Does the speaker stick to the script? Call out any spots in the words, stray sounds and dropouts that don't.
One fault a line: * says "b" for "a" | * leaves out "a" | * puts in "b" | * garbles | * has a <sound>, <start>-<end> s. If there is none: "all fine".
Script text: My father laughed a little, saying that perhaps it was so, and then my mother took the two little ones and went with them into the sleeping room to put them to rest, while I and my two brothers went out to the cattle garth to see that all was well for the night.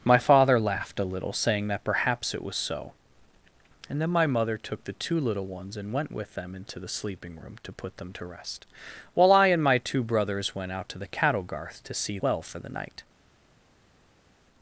* leaves out "that all was"